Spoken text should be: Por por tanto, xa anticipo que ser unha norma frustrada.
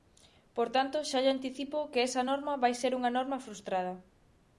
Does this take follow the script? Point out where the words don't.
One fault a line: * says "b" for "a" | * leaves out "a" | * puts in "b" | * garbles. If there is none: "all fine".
* leaves out "por"
* puts in "lle"
* puts in "esa norma vai"